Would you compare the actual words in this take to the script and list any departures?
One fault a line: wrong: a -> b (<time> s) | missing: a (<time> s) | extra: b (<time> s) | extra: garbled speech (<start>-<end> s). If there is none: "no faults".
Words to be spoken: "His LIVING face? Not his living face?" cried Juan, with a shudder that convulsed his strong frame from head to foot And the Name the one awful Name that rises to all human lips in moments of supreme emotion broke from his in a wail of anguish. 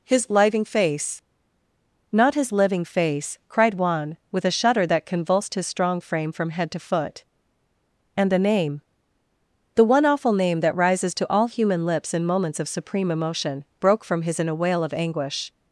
no faults